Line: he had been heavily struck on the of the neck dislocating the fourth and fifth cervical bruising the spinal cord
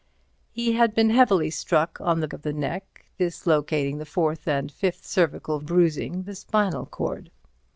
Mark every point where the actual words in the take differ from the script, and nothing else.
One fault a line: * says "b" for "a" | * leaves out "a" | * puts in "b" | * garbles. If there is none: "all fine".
all fine